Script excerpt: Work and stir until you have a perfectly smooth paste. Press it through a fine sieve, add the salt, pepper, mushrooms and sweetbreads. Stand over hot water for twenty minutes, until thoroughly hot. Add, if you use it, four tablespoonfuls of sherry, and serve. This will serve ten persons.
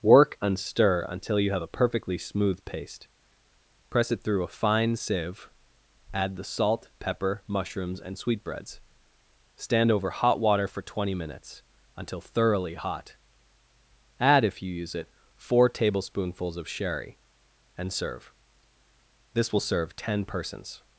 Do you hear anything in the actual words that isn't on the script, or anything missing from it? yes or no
no